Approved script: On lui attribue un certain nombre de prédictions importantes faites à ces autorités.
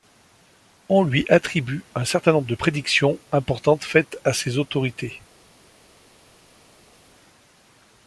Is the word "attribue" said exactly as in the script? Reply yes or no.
yes